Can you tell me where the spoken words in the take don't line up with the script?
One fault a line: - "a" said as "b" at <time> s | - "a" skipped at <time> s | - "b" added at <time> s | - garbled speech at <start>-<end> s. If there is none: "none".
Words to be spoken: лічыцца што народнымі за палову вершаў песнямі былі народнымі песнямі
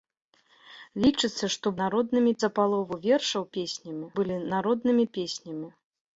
none